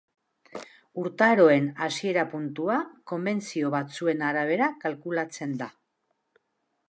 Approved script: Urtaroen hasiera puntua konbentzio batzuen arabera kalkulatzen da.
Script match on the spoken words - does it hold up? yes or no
yes